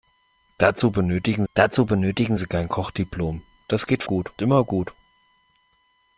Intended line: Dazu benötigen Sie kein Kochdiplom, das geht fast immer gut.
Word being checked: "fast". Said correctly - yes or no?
no